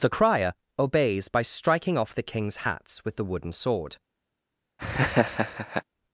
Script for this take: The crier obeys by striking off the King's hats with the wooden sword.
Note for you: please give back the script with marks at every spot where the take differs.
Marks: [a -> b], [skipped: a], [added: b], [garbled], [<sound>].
The crier obeys by striking off the King's hats with the wooden sword. [laugh]